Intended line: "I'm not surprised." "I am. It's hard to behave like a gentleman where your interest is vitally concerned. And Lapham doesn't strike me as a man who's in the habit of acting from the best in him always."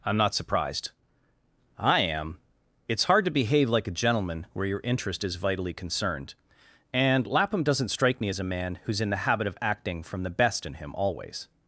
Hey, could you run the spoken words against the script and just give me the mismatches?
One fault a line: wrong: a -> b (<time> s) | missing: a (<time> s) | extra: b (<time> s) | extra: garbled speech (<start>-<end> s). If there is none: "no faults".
no faults